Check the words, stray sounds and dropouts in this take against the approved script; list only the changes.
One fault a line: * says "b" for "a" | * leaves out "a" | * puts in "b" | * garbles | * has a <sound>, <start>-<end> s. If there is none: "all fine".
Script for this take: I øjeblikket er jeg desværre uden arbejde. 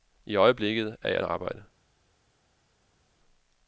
* leaves out "desværre uden"